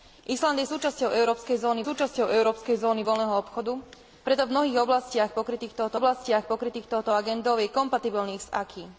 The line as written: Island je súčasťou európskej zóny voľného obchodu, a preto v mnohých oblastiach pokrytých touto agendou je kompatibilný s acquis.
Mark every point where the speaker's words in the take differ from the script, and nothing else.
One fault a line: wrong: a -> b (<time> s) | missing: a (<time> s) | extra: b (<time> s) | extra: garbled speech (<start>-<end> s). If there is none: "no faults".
extra: súčasťou európskej zóny (1.8 s)
missing: a (3.8 s)
extra: oblastiach pokrytých touto (5.9 s)